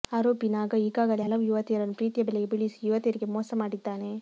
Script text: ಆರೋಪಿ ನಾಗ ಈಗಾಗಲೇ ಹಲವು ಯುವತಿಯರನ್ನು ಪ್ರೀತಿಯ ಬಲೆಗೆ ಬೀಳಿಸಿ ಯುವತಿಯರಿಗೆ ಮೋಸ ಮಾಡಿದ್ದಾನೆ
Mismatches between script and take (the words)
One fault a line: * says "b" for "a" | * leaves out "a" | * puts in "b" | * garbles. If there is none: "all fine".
all fine